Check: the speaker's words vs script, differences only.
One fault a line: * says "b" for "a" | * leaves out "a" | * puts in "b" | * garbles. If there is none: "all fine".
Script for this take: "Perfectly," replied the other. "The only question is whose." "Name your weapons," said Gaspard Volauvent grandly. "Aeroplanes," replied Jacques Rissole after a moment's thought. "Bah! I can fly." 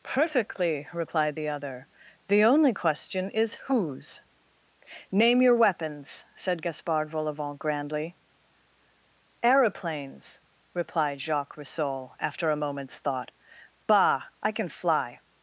all fine